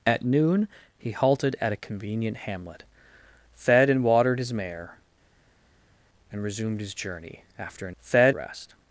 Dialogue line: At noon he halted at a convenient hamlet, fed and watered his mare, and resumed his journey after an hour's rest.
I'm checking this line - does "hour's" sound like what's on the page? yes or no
no